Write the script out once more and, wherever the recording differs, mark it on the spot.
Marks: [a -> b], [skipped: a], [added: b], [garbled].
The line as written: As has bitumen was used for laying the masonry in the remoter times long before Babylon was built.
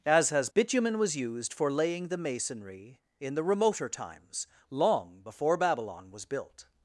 As has bitumen was used for laying the masonry in the remoter times long before Babylon was built.